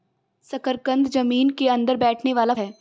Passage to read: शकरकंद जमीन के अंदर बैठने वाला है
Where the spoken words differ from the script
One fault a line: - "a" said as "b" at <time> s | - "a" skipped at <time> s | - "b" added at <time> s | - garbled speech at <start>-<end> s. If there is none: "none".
none